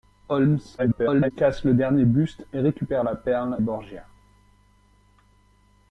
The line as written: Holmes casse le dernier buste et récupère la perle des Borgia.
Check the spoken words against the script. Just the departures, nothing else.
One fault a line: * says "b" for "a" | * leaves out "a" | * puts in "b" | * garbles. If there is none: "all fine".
* garbles
* leaves out "des"